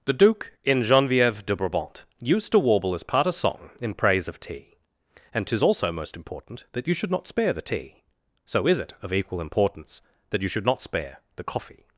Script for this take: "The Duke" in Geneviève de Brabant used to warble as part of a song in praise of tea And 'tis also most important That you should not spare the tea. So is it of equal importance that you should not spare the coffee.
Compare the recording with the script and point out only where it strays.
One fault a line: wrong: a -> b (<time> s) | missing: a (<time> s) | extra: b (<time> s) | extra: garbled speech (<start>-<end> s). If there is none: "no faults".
missing: of (3.3 s)